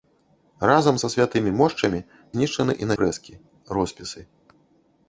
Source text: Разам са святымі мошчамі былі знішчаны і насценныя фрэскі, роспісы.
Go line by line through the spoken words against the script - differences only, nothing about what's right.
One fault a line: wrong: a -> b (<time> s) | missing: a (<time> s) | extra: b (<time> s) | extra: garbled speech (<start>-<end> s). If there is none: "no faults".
missing: былі (2.0 s)
missing: насценныя (2.9 s)